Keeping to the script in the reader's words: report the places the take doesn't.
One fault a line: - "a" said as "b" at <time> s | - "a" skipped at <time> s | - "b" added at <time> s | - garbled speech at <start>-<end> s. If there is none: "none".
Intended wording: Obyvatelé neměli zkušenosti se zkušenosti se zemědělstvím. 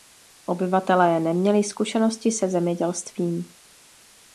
- "zkušenosti se" skipped at 2.5 s